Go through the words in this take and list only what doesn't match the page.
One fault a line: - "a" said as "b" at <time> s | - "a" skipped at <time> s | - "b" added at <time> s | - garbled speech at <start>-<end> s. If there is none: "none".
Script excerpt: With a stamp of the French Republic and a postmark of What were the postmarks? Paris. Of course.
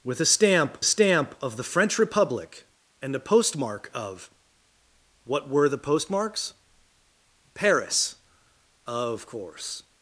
- "stamp" added at 0.8 s